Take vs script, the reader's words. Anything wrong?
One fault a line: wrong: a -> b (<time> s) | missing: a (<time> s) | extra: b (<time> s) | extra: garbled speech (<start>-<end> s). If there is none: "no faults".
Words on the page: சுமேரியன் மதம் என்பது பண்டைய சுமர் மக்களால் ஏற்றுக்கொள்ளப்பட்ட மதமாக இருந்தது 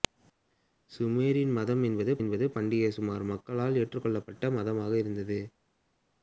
extra: என்பது (2.2 s)